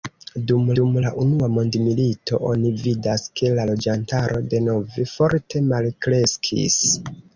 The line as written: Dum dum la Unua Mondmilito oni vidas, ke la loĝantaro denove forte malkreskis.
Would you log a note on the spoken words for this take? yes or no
no